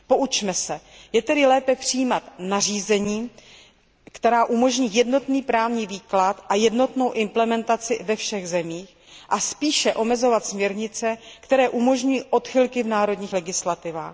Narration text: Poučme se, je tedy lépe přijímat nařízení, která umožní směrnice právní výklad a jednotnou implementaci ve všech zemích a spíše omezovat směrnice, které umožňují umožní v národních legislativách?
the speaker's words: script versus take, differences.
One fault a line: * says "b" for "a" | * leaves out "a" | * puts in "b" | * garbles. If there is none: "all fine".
* says "jednotný" for "směrnice"
* says "odchylky" for "umožní"